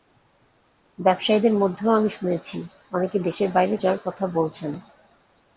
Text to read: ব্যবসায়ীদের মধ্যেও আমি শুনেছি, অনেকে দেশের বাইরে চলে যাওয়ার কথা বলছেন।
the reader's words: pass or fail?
fail